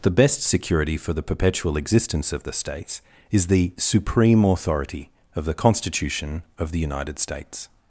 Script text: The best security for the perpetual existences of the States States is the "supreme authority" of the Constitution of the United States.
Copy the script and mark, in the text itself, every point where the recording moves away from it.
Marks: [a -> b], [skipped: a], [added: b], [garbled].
The best security for the perpetual [existences -> existence] of the States [skipped: States] is the "supreme authority" of the Constitution of the United States.